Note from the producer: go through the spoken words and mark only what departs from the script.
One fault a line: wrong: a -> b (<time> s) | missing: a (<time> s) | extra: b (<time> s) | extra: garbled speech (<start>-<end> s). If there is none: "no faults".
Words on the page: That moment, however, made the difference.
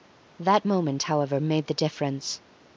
no faults